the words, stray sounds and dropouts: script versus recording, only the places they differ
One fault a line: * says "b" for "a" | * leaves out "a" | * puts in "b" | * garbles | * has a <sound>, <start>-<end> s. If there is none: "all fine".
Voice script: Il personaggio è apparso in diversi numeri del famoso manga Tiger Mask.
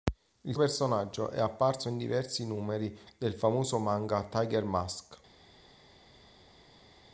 all fine